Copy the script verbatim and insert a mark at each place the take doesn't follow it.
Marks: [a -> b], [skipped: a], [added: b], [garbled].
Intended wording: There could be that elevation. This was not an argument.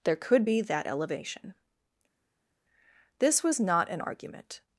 There could be that elevation. This was not an argument.